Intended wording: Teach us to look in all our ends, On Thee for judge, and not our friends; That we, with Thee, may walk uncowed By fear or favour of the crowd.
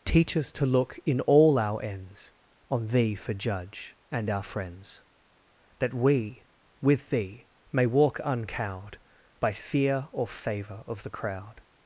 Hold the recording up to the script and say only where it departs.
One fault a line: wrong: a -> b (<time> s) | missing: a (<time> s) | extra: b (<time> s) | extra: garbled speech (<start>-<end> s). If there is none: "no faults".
missing: not (4.3 s)